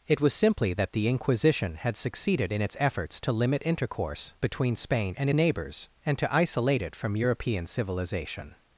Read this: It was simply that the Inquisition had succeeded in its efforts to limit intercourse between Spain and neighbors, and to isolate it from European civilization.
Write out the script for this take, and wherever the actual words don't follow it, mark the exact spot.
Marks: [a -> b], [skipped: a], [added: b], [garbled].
It was simply that the Inquisition had succeeded in its efforts to limit intercourse between Spain and neighbors, and to isolate it from European civilization.